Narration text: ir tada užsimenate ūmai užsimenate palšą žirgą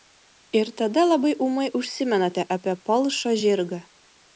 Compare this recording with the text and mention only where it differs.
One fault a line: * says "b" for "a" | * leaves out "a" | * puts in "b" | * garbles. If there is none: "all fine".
* says "labai" for "užsimenate"
* puts in "apie"